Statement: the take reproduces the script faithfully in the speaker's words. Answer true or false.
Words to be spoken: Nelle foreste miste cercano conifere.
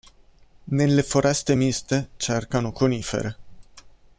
true